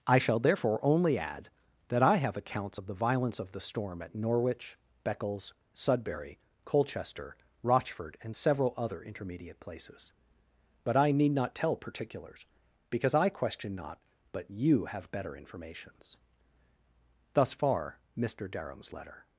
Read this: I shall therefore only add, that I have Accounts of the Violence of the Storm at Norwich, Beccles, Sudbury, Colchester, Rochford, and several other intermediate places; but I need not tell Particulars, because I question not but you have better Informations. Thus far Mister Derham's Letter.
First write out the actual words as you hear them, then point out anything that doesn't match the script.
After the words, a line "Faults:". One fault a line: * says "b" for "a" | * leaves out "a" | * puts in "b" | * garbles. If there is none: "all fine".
I shall therefore only add, that I have Accounts of the Violence of the Storm at Norwich, Beccles, Sudbury, Colchester, Rochford, and several other intermediate places; but I need not tell Particulars, because I question not but you have better Informations. Thus far Mister Derham's Letter.
Faults:
all fine